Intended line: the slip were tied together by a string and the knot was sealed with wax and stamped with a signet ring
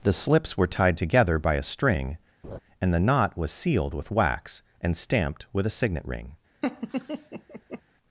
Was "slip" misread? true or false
true